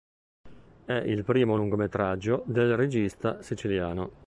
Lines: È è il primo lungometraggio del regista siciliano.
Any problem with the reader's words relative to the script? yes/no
yes